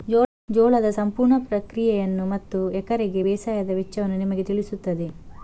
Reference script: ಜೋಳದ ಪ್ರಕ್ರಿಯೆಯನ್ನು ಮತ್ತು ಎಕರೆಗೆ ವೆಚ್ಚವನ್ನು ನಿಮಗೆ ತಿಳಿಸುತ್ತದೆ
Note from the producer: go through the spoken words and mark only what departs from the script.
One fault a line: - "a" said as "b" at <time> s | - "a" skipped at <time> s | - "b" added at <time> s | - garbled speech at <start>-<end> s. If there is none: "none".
- "ಸಂಪೂರ್ಣ" added at 0.9 s
- "ಬೇಸಾಯದ" added at 3.2 s